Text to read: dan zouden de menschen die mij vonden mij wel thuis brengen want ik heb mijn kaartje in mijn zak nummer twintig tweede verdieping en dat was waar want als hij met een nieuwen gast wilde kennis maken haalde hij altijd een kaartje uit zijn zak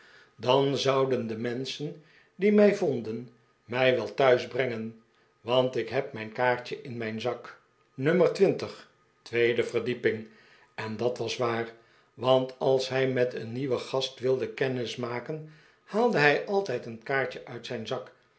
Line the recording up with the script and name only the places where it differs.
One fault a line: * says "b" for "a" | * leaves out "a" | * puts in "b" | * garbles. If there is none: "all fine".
all fine